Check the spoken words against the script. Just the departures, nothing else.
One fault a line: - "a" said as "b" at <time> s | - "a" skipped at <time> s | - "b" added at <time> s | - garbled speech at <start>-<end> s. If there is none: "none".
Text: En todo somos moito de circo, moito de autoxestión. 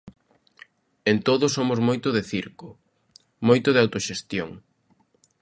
none